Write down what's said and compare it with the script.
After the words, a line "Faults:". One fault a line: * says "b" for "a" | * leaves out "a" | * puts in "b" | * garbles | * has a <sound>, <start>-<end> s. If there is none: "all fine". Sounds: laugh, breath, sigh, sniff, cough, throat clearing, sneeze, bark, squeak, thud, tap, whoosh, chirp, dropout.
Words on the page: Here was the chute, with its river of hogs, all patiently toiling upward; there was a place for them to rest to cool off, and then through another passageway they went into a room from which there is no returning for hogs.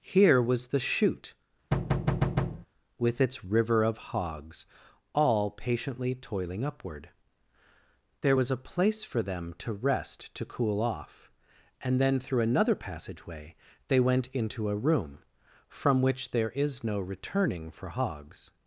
Here was the chute, with its river of hogs, all patiently toiling upward; there was a place for them to rest to cool off, and then through another passageway they went into a room from which there is no returning for hogs.
Faults:
* has a thud, 1.7-2.7 s